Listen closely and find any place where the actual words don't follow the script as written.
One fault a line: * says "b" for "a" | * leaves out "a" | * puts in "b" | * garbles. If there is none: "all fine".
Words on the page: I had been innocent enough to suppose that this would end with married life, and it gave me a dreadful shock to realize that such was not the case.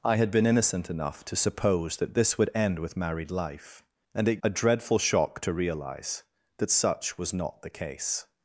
* leaves out "gave me"